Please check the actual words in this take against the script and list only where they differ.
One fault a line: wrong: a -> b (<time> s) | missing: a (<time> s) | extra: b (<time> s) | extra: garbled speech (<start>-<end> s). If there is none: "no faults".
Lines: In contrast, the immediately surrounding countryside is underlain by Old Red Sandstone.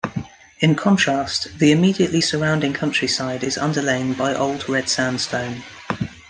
no faults